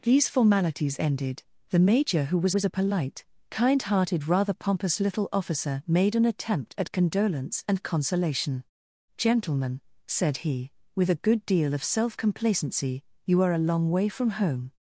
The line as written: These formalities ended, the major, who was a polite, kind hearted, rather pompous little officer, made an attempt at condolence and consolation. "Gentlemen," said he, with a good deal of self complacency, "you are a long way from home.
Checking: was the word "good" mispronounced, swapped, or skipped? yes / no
no